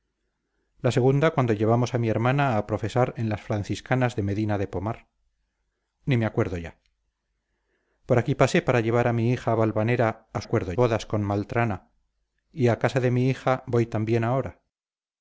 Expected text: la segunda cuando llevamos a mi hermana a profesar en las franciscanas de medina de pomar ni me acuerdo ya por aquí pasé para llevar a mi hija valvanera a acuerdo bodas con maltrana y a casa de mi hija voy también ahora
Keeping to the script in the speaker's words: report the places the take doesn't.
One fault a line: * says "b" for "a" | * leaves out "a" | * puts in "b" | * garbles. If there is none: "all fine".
all fine